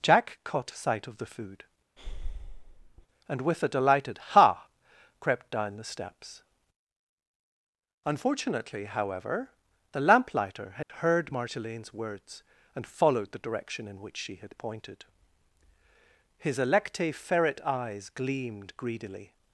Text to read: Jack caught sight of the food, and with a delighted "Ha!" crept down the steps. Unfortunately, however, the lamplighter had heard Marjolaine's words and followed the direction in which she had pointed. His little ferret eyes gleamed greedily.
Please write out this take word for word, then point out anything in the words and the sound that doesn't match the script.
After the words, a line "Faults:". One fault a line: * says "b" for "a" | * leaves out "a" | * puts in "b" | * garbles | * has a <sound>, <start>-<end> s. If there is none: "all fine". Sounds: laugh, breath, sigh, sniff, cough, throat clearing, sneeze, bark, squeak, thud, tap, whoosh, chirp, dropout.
Jack caught sight of the food, and with a delighted "Ha!" crept down the steps. Unfortunately, however, the lamplighter had heard Marjolaine's words and followed the direction in which she had pointed. His electe ferret eyes gleamed greedily.
Faults:
* has a breath, 2.0-3.1 s
* has a dropout, 10.8-10.9 s
* says "electe" for "little"